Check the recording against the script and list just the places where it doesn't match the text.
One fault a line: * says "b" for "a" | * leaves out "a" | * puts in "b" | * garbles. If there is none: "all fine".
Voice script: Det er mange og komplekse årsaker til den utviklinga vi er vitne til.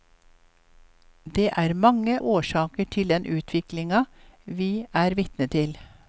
* leaves out "og komplekse"